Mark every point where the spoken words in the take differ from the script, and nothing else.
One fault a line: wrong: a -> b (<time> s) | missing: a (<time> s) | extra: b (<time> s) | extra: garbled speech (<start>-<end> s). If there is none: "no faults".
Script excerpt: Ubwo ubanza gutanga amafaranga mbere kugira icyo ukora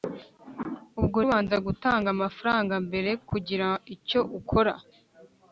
no faults